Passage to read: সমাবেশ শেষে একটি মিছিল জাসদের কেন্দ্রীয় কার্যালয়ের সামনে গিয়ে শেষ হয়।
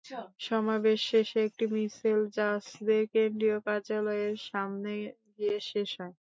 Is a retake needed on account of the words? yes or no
no